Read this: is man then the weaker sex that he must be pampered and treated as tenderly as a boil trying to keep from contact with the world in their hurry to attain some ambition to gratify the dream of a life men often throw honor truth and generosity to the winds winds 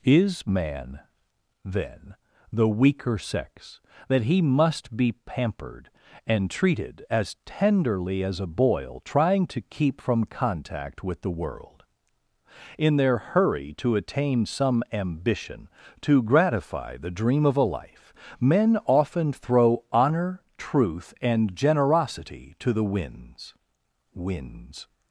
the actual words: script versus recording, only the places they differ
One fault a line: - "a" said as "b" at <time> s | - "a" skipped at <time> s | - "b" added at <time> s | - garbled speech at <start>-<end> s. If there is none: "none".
none